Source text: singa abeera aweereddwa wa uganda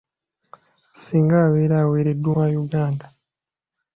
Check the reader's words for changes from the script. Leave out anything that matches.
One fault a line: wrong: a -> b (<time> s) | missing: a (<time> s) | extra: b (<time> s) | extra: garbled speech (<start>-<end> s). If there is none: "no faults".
no faults